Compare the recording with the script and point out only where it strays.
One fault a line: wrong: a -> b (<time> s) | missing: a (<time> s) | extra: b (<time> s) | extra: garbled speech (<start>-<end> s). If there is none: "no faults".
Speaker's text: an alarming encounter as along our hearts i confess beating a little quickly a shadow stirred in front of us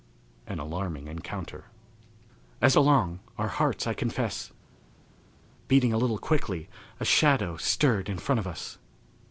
no faults